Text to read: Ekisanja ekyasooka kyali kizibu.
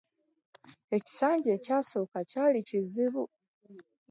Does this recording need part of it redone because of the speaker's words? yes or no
no